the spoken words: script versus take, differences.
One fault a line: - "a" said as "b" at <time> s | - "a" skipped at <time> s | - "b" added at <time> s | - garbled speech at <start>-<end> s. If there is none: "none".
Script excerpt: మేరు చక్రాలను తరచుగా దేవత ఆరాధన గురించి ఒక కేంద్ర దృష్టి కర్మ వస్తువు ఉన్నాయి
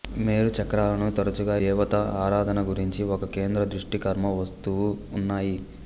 none